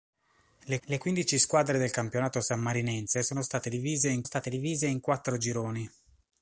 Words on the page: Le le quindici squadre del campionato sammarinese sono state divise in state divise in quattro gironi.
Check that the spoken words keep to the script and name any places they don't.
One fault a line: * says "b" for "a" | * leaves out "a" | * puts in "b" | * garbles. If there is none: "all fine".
all fine